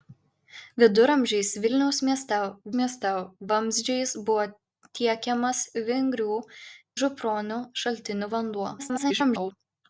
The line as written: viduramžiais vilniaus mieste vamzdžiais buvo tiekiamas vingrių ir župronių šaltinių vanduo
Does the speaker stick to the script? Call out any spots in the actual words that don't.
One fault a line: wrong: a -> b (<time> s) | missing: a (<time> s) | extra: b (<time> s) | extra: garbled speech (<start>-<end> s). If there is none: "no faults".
extra: mieste (2.8 s)
missing: ir (6.4 s)
extra: garbled speech (8.8-9.5 s)